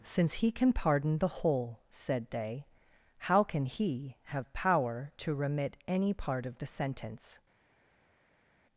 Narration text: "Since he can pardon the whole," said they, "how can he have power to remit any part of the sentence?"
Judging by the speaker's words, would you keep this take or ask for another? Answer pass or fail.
pass